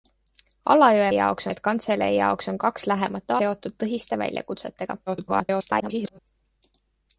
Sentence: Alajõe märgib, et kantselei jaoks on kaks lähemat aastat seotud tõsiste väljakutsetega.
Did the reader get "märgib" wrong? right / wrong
wrong